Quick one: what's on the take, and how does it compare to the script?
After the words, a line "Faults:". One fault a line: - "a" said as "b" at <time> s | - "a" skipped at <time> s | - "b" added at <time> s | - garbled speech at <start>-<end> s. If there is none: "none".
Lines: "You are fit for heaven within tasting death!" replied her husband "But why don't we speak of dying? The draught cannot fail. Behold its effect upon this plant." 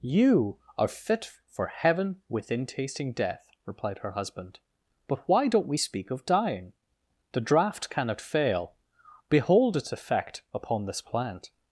"You are fit for heaven within tasting death!" replied her husband "But why don't we speak of dying? The draught cannot fail. Behold its effect upon this plant."
Faults:
none